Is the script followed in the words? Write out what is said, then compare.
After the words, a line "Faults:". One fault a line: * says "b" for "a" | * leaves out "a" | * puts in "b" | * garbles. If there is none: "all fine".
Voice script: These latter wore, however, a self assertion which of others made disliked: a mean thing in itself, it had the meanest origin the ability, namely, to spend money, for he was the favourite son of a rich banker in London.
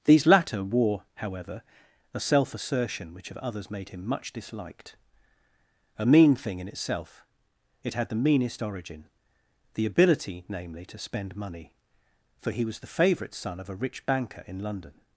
These latter wore, however, a self assertion which of others made him much disliked: a mean thing in itself, it had the meanest origin the ability, namely, to spend money, for he was the favourite son of a rich banker in London.
Faults:
* puts in "him much"